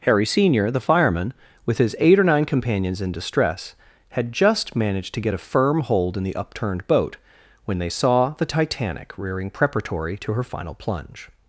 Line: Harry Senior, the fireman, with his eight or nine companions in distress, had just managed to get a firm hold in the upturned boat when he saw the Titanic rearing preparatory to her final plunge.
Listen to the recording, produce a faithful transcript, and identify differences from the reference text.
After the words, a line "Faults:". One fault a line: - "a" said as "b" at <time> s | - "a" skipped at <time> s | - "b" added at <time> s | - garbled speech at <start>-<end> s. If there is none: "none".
Harry Senior, the fireman, with his eight or nine companions in distress, had just managed to get a firm hold in the upturned boat when they saw the Titanic rearing preparatory to her final plunge.
Faults:
- "he" said as "they" at 7.8 s